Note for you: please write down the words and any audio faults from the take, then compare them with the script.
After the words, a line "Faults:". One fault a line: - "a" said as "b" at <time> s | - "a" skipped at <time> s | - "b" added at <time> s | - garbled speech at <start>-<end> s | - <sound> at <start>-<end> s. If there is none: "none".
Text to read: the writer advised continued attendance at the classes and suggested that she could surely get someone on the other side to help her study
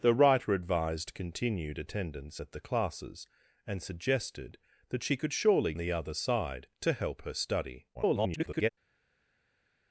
the writer advised continued attendance at the classes and suggested that she could surely the other side to help her study [garbled]
Faults:
- "get someone on" skipped at 5.7 s
- garbled speech at 7.9-8.7 s